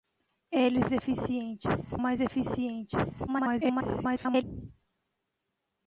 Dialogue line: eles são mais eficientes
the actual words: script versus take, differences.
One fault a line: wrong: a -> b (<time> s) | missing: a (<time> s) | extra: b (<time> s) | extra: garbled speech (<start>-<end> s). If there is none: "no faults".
wrong: são -> eficientes (0.9 s)
extra: garbled speech (3.3-4.4 s)